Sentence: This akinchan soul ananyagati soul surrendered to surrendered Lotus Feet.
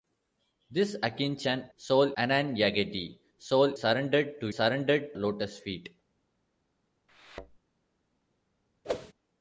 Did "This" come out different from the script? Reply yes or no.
no